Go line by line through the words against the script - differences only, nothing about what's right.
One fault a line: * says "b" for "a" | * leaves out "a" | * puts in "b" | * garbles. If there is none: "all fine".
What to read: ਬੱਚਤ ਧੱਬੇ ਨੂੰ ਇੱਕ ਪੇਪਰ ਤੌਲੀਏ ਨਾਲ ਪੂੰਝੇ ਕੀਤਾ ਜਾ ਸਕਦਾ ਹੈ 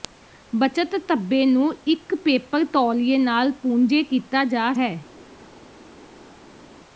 * leaves out "ਸਕਦਾ"